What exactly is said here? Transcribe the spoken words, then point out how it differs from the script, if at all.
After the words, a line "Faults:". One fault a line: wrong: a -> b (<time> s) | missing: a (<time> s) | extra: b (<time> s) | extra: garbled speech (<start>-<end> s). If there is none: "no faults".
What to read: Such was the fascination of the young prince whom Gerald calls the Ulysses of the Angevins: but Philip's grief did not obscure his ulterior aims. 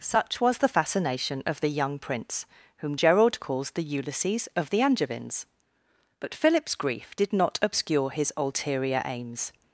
Such was the fascination of the young prince whom Gerald calls the Ulysses of the Angevins: but Philip's grief did not obscure his ulterior aims.
Faults:
no faults